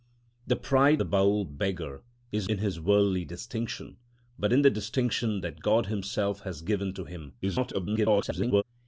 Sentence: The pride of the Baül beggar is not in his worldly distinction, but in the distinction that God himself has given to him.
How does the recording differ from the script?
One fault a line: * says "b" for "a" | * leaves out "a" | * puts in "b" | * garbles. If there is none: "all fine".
* leaves out "of"
* leaves out "not"
* garbles